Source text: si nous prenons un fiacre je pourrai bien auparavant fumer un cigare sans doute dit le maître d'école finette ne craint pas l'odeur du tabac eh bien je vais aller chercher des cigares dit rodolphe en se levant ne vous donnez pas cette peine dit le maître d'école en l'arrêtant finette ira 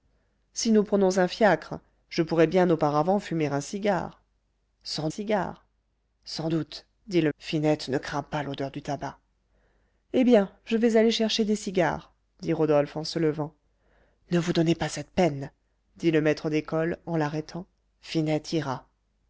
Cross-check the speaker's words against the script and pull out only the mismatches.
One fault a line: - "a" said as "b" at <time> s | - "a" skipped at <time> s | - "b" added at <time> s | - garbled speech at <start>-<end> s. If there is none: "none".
- "cigare sans" added at 5.1 s
- "maître d'école" skipped at 7.3 s